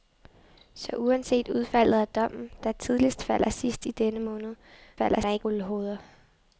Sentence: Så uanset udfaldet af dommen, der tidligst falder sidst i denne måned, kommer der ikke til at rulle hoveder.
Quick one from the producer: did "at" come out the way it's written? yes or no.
no